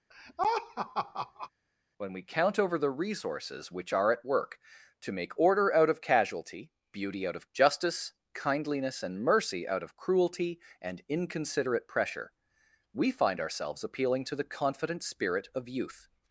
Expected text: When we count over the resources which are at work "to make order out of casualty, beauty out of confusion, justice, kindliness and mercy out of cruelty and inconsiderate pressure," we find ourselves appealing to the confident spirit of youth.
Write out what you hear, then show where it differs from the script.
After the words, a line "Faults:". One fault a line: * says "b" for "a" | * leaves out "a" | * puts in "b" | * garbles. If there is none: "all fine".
When we count over the resources which are at work "to make order out of casualty, beauty out of justice, kindliness and mercy out of cruelty and inconsiderate pressure," we find ourselves appealing to the confident spirit of youth.
Faults:
* leaves out "confusion"